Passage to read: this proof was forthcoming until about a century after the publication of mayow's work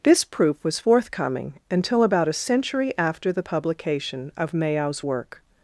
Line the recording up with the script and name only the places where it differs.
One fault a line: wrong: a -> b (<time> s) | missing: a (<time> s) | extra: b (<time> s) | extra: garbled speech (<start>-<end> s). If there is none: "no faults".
no faults